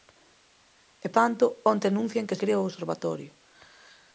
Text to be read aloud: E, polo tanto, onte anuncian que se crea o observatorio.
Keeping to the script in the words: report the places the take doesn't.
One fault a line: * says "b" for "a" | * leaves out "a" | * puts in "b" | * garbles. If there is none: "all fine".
* leaves out "polo"
* leaves out "se"